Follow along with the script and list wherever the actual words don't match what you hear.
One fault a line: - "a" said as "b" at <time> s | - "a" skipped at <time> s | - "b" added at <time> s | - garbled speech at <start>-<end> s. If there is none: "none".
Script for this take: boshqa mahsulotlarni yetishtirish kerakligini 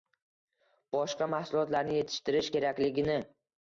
none